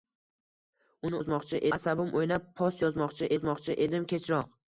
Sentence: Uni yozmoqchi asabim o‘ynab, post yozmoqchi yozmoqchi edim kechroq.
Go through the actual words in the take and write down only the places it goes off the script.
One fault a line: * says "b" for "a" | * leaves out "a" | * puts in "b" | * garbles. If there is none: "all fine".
all fine